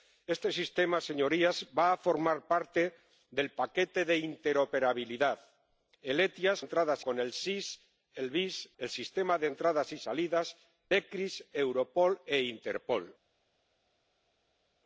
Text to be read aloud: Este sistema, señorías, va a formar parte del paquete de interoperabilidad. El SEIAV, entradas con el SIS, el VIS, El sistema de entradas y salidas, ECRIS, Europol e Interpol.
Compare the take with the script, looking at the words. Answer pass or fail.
pass